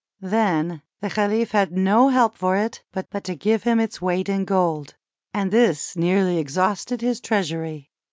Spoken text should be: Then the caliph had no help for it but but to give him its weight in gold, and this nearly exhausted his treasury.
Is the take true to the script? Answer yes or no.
yes